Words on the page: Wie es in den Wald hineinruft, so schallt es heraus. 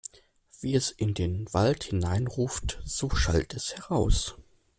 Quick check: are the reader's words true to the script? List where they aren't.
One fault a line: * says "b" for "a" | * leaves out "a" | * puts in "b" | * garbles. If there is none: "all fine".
all fine